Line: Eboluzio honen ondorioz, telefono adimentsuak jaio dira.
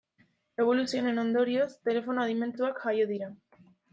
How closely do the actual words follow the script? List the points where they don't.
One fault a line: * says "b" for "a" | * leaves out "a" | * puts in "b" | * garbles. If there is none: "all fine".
all fine